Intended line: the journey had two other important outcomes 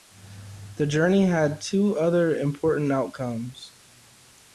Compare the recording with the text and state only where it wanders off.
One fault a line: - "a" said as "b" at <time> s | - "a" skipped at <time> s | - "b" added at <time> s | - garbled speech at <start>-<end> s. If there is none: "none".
none